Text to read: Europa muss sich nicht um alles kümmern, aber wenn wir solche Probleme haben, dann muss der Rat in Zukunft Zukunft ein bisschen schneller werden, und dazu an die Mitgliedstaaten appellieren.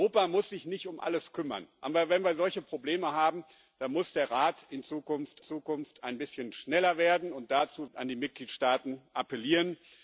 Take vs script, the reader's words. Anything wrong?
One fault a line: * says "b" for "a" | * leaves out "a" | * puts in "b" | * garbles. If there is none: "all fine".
all fine